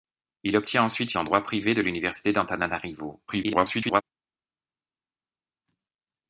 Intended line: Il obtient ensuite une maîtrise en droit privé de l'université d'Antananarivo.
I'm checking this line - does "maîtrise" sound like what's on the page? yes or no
no